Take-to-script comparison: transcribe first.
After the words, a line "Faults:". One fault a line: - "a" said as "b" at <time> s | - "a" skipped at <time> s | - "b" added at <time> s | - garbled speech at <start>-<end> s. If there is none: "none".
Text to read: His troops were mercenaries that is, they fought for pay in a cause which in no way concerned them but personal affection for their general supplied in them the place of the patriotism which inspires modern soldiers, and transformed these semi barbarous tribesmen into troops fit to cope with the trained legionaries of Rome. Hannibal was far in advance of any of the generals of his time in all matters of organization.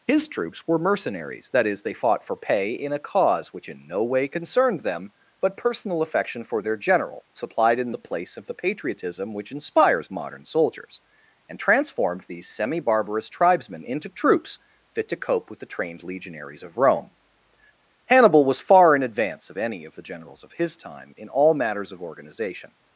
His troops were mercenaries that is, they fought for pay in a cause which in no way concerned them but personal affection for their general supplied in the place of the patriotism which inspires modern soldiers, and transformed these semi barbarous tribesmen into troops fit to cope with the trained legionaries of Rome. Hannibal was far in advance of any of the generals of his time in all matters of organization.
Faults:
- "them" skipped at 7.9 s